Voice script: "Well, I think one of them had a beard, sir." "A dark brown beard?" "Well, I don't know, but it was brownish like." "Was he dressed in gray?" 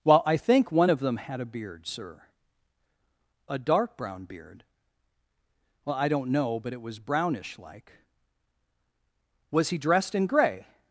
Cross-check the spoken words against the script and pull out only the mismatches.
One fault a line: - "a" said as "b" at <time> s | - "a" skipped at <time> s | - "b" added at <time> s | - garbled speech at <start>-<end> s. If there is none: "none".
none